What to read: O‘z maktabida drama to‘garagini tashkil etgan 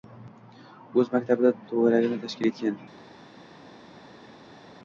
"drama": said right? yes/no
no